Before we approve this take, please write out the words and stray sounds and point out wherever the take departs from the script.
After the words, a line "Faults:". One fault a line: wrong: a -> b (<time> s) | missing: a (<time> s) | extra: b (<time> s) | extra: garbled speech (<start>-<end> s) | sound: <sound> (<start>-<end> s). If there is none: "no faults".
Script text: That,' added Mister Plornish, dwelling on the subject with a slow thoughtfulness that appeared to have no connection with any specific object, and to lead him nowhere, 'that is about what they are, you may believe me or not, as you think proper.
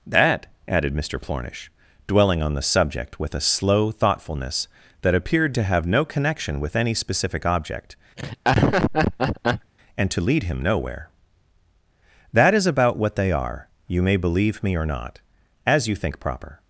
That,' added Mister Plornish, dwelling on the subject with a slow thoughtfulness that appeared to have no connection with any specific object, and to lead him nowhere, 'that is about what they are, you may believe me or not, as you think proper.
Faults:
sound: laugh (8.2-9.7 s)